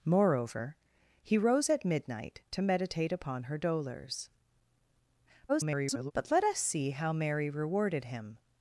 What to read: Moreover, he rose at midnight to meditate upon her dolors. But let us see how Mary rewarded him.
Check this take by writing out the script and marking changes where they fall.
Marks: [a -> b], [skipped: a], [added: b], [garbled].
Moreover, he rose at midnight to meditate upon her dolors. [garbled] But let us see how Mary rewarded him.